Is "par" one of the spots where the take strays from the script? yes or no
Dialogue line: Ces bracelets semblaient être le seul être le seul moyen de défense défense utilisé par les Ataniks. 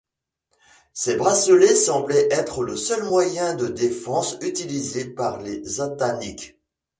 no